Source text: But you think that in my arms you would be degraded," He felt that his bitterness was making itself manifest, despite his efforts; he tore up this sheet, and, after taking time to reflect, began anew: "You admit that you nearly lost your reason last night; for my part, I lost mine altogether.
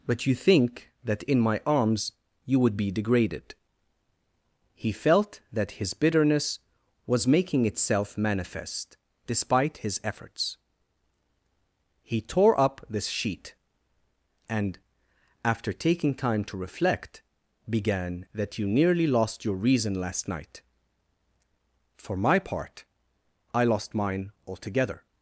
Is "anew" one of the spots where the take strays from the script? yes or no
yes